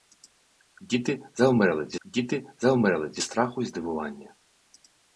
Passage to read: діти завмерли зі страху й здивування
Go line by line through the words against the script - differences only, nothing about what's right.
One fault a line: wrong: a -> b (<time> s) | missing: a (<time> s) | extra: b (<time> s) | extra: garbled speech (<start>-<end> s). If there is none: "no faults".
extra: діти завмерли зі (2.0 s)